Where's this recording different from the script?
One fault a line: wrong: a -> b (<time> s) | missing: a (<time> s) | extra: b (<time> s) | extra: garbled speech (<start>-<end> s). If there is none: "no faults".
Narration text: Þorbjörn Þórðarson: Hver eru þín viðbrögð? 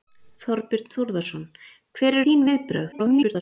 missing: eru (2.2 s)
extra: garbled speech (2.9-3.4 s)